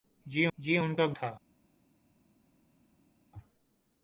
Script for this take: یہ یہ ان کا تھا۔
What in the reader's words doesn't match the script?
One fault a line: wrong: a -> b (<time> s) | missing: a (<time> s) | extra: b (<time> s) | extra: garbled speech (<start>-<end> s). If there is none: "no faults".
no faults